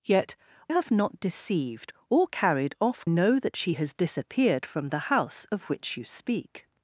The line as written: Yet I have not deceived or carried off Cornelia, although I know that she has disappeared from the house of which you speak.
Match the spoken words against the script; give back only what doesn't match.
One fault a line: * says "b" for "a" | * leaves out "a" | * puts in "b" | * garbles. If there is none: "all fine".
* leaves out "I"
* leaves out "Cornelia although I"